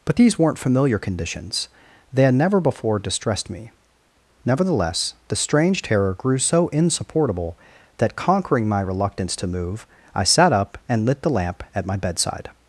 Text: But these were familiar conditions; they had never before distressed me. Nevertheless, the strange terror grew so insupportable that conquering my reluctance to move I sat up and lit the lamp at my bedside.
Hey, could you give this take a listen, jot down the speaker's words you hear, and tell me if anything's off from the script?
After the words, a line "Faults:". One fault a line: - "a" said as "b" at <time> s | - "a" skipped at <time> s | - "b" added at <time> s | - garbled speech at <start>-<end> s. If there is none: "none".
But these weren't familiar conditions; they had never before distressed me. Nevertheless, the strange terror grew so insupportable that conquering my reluctance to move I sat up and lit the lamp at my bedside.
Faults:
- "were" said as "weren't" at 0.4 s